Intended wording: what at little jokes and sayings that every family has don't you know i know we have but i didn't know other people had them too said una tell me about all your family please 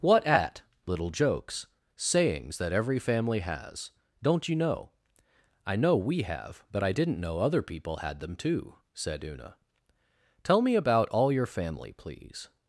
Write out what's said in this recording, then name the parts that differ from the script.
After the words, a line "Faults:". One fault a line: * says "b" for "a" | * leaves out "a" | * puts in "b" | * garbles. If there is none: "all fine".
what at little jokes sayings that every family has don't you know i know we have but i didn't know other people had them too said una tell me about all your family please
Faults:
* leaves out "and"